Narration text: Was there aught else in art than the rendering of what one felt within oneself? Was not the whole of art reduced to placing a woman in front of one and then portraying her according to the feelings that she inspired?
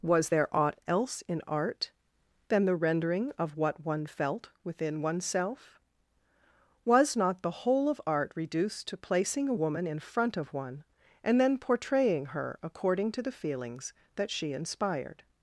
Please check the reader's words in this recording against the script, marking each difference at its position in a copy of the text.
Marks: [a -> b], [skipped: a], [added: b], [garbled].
Was there aught else in art than the rendering of what one felt within oneself? Was not the whole of art reduced to placing a woman in front of one and then portraying her according to the feelings that she inspired?